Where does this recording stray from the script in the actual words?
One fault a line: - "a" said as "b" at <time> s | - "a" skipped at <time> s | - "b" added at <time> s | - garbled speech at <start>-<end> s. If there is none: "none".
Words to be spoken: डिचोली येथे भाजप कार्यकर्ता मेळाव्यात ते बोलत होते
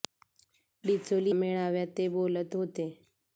- "येथे भाजप कार्यकर्ता" skipped at 1.3 s